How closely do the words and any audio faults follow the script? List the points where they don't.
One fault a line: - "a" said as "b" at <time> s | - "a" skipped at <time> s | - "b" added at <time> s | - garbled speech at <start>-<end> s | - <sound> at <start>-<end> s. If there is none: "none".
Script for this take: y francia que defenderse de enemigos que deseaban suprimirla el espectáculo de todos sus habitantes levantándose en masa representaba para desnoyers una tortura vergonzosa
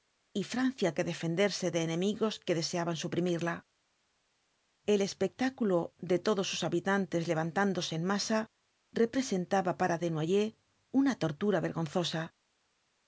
none